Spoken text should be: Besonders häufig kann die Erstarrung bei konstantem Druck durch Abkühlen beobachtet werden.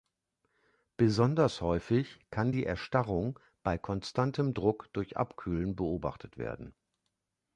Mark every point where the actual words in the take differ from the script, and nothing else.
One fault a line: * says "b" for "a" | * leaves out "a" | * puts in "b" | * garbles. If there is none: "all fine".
all fine